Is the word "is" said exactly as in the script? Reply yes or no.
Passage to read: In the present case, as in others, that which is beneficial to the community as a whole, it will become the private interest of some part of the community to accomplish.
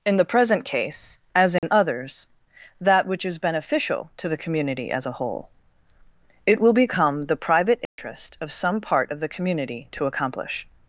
yes